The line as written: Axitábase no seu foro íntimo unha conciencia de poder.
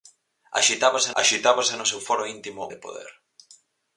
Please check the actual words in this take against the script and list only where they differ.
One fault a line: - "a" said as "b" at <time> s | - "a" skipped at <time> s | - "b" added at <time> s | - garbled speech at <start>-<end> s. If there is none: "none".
- "axitábase" added at 1.2 s
- "unha conciencia" skipped at 2.6 s